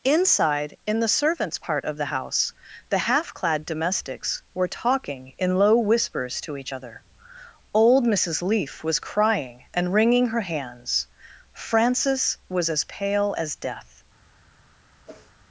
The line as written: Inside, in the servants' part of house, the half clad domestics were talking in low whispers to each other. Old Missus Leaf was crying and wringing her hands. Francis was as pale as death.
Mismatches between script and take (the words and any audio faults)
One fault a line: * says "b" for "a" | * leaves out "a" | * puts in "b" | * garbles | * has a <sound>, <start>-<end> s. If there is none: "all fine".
* puts in "the"
* has a whoosh, 15.1-15.3 s